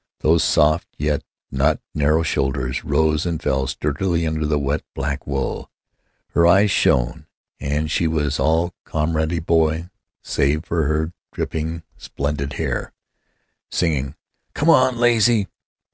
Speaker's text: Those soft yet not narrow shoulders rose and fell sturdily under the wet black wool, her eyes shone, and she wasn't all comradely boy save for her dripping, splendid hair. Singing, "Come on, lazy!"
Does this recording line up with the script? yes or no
no